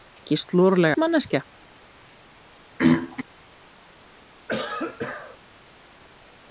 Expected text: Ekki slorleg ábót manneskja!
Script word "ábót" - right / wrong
wrong